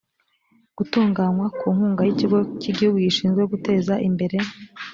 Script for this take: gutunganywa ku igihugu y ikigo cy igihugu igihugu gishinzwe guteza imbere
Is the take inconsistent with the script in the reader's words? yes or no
yes